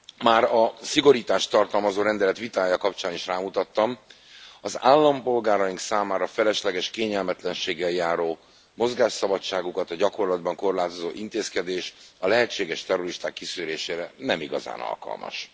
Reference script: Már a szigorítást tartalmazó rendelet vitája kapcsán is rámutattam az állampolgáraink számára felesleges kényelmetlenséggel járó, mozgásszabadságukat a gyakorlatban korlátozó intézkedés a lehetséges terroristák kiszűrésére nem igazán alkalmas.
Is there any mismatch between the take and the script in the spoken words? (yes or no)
no